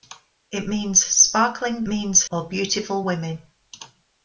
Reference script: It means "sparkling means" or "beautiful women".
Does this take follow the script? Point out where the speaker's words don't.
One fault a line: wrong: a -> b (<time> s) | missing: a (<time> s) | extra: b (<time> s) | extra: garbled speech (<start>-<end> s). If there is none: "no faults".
no faults